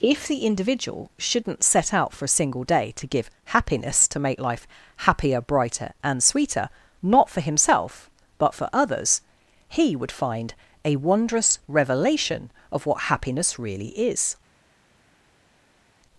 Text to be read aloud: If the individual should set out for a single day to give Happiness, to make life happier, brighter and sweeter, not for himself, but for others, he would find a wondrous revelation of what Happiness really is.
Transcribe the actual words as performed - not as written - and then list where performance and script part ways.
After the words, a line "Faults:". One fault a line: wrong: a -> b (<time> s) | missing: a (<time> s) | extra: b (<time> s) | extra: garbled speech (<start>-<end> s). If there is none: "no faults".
If the individual shouldn't set out for a single day to give Happiness, to make life happier, brighter and sweeter, not for himself, but for others, he would find a wondrous revelation of what Happiness really is.
Faults:
wrong: should -> shouldn't (1.2 s)